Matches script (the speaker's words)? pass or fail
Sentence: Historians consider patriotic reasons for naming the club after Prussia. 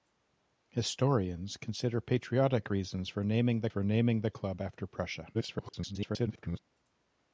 fail